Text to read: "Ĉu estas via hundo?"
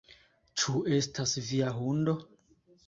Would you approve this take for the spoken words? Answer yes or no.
yes